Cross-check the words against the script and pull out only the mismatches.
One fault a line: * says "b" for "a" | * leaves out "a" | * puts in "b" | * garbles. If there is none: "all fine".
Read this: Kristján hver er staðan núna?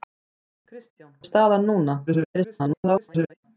* leaves out "hver"
* garbles